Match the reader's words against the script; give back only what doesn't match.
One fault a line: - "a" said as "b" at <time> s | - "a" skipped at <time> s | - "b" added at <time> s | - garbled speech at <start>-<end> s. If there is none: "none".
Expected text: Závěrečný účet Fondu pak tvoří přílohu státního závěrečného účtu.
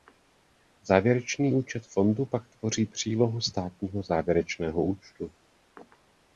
none